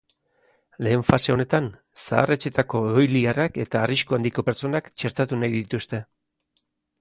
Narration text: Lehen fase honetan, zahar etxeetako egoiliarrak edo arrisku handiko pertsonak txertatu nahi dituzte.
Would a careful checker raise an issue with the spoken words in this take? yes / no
yes